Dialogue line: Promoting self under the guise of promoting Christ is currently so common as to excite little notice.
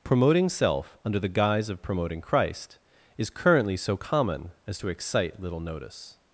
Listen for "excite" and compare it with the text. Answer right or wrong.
right